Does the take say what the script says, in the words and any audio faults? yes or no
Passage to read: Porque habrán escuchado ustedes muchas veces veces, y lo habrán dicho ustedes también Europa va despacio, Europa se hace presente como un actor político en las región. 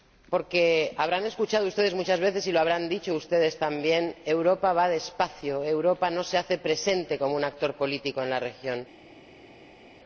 no